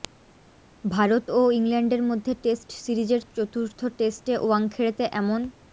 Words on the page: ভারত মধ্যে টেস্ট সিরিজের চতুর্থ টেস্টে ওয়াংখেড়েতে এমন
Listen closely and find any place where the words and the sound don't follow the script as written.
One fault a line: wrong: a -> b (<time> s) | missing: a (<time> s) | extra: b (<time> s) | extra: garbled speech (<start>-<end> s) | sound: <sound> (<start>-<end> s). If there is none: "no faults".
extra: ও ইংল্যান্ডের (1.3 s)